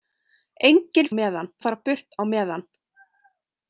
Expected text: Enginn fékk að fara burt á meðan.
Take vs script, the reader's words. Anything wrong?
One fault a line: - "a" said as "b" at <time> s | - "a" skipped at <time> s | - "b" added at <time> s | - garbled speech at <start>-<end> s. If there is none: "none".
- "fékk" said as "meðan" at 1.2 s